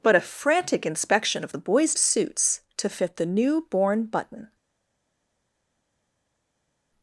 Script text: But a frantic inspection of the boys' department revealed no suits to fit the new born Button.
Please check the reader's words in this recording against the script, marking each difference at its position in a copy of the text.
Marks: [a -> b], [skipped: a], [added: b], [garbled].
But a frantic inspection of the boys' [skipped: department revealed no] suits to fit the new born Button.